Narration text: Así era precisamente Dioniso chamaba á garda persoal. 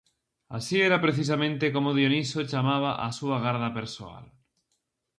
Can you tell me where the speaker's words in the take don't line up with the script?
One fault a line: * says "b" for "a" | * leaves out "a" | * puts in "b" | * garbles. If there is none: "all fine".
* puts in "como"
* puts in "súa"